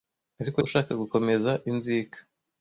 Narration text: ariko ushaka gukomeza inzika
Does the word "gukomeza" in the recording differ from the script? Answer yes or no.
no